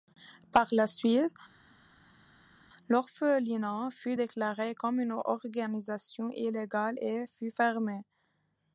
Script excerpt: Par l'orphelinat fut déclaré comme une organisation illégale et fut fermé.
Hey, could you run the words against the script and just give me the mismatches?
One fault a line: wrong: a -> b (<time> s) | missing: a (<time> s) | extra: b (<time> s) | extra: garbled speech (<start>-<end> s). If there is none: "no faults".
extra: la suite (0.7 s)